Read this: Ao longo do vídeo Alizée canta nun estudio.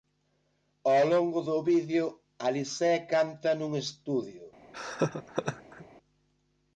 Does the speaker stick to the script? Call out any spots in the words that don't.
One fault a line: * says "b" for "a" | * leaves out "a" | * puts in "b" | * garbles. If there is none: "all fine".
all fine